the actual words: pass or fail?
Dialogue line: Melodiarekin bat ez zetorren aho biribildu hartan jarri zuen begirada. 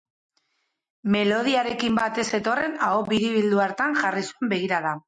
pass